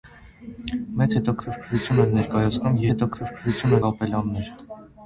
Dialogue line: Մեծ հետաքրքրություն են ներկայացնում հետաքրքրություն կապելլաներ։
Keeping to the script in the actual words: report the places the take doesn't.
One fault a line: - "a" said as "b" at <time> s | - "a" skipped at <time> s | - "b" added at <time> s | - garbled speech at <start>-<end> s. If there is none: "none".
none